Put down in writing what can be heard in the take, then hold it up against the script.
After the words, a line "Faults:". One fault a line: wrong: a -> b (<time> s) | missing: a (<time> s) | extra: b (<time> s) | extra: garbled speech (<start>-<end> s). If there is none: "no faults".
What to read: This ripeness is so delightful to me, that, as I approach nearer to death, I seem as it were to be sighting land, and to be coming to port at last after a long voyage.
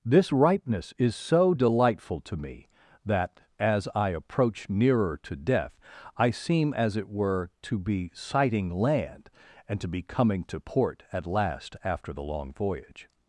This ripeness is so delightful to me, that, as I approach nearer to death, I seem as it were to be sighting land, and to be coming to port at last after the long voyage.
Faults:
wrong: a -> the (12.1 s)